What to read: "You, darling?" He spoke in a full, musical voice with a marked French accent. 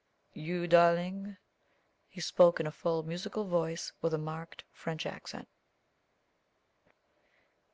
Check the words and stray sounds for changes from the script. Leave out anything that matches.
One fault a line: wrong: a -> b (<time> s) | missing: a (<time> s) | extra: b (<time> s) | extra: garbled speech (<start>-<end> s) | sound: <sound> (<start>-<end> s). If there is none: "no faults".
no faults